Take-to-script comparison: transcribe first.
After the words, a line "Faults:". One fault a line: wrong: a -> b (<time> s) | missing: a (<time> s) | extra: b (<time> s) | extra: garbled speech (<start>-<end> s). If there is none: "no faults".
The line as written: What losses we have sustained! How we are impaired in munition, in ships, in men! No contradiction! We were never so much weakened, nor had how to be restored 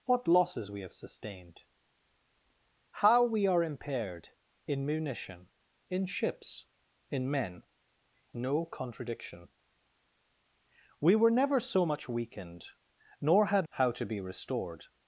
What losses we have sustained! How we are impaired in munition, in ships, in men! No contradiction! We were never so much weakened, nor had how to be restored
Faults:
no faults